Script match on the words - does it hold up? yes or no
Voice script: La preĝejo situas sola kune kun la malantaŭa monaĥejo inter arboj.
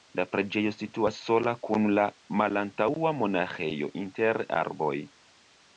no